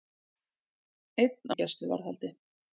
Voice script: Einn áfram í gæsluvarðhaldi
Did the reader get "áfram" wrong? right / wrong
wrong